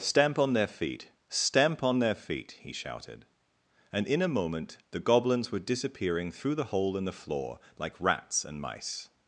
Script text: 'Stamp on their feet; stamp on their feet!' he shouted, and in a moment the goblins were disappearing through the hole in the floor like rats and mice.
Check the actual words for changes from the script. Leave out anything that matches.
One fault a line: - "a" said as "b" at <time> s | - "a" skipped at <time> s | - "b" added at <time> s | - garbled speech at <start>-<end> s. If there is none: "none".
none